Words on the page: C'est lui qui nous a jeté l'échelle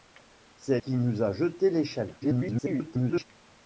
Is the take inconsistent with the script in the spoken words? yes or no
yes